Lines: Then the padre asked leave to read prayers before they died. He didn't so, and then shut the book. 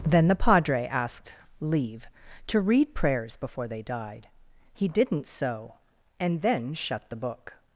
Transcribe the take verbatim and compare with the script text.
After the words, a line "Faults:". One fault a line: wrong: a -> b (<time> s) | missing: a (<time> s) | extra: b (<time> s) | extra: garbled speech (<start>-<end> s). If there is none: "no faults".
Then the padre asked leave to read prayers before they died. He didn't so, and then shut the book.
Faults:
no faults